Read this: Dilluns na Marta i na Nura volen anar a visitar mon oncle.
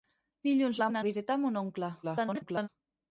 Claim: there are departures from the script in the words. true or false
true